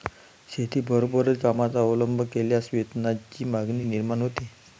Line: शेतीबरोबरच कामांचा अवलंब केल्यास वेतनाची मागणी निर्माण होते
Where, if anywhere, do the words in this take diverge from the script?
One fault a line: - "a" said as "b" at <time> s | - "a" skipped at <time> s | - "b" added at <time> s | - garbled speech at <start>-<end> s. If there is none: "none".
none